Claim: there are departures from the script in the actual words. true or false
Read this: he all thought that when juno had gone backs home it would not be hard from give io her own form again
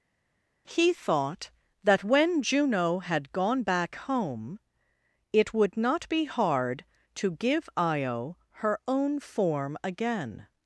true